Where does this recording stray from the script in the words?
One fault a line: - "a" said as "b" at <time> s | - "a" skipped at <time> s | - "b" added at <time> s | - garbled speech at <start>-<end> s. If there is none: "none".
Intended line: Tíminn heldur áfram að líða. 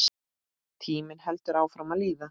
none